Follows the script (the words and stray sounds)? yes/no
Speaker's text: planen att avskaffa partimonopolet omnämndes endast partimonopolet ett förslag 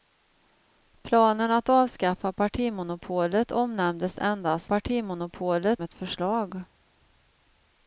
yes